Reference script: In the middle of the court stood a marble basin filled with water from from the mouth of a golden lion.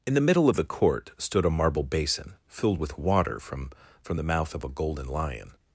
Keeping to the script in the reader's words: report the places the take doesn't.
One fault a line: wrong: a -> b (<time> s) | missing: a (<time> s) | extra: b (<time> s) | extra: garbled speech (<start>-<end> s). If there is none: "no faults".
no faults